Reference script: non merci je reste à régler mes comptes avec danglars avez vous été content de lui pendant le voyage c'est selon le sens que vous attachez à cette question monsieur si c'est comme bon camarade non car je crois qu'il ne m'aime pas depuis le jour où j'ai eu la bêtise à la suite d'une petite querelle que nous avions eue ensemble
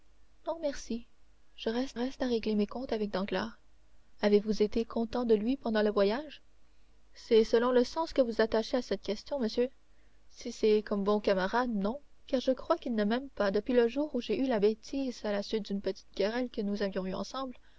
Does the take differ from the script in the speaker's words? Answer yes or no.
yes